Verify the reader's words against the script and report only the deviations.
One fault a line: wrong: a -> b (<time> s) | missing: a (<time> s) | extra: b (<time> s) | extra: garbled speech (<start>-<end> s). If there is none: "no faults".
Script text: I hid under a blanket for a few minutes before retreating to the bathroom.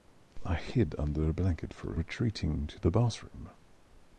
missing: few minutes before (2.0 s)